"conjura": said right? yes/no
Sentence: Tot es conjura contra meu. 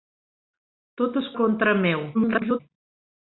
no